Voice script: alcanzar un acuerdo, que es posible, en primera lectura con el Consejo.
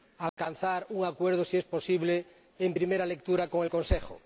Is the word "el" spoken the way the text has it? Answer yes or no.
yes